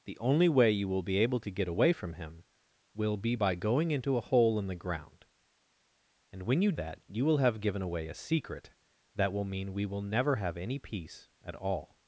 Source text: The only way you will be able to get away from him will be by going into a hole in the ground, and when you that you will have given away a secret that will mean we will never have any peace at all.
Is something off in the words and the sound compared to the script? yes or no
no